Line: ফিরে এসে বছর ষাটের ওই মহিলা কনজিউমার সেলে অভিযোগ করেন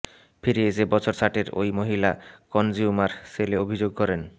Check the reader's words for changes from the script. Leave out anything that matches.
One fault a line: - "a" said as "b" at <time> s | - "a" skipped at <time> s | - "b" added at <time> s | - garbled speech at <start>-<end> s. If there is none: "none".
none